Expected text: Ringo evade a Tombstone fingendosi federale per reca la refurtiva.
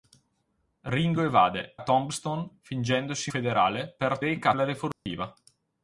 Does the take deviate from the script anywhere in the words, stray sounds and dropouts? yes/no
yes